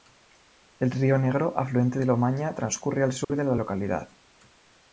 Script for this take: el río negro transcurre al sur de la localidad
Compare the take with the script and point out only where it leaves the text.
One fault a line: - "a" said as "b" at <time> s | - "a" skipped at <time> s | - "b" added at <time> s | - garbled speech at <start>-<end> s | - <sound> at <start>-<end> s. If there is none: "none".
- "afluente del omaña" added at 1.6 s
- dropout at 3.2-3.3 s